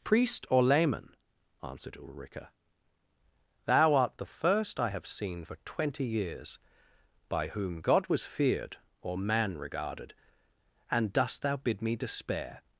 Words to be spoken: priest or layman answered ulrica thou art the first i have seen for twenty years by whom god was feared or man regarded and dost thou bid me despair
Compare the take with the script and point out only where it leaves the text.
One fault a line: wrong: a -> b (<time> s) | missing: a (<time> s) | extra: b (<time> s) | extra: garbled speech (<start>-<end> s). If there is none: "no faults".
no faults